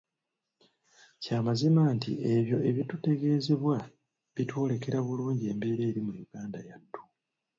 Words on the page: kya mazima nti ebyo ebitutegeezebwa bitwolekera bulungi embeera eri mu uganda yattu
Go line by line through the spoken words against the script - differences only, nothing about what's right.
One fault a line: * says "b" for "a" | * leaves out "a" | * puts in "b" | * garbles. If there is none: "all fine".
all fine